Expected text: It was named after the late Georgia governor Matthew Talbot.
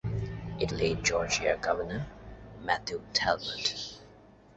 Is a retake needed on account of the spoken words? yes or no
yes